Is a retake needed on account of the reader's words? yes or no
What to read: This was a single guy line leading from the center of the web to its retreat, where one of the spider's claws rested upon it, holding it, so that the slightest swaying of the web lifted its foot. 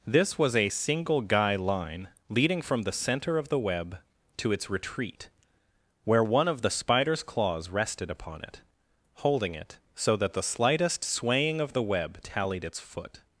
yes